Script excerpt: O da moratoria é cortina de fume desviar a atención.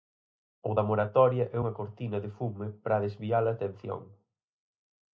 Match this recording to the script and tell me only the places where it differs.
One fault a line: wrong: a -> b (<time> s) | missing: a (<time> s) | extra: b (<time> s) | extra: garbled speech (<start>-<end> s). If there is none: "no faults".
extra: unha (1.6 s)
extra: para (2.8 s)